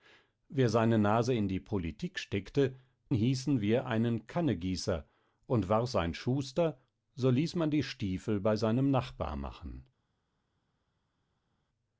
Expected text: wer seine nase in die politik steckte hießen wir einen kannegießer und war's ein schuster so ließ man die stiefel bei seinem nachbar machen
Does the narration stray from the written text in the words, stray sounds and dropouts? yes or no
no